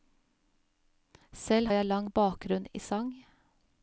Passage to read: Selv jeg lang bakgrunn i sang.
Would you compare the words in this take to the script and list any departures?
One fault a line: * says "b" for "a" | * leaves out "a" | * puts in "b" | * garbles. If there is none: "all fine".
all fine